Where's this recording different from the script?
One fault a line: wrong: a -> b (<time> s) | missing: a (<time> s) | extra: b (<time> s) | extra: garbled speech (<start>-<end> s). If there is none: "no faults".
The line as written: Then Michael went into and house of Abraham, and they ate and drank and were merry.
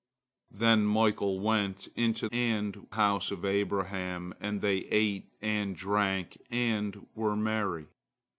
no faults